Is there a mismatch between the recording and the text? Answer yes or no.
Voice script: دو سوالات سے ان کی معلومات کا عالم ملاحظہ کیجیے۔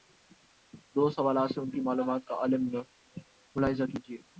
no